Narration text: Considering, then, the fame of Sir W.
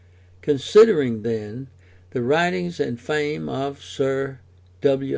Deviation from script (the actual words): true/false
true